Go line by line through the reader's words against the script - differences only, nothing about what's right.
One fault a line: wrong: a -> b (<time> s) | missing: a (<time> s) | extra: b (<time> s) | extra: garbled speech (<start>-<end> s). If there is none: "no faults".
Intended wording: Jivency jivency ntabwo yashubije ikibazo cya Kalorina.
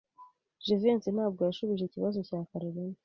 missing: jivency (1.1 s)